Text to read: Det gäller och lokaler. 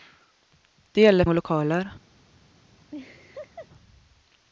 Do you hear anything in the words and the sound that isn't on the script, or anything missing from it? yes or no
yes